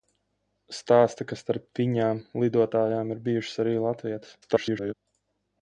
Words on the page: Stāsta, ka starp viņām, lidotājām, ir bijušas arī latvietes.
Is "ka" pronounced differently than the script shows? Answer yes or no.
no